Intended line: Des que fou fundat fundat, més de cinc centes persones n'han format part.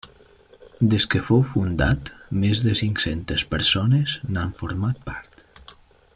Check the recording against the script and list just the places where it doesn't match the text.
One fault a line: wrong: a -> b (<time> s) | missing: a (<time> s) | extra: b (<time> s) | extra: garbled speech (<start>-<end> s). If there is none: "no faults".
missing: fundat (2.1 s)